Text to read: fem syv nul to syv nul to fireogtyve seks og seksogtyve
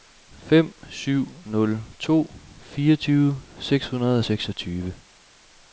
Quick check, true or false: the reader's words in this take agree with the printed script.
false